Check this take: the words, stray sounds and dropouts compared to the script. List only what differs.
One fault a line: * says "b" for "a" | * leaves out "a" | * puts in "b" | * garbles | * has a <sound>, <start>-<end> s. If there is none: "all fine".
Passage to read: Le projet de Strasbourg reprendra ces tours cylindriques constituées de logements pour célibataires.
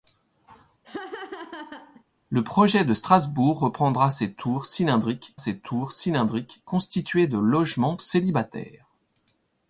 * has a laugh, 0.8-2.0 s
* puts in "ces tours cylindriques"
* leaves out "pour"